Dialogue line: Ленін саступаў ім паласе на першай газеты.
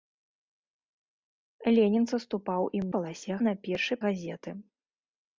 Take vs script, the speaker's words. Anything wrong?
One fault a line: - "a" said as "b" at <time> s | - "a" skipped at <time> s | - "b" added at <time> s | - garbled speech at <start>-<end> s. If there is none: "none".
none